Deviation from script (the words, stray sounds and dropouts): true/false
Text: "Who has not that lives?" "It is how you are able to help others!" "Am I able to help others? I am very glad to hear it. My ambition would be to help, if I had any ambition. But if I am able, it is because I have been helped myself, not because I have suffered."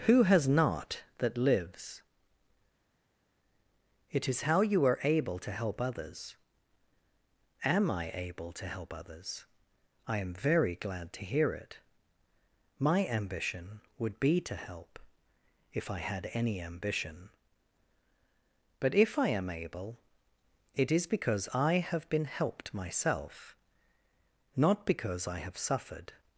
false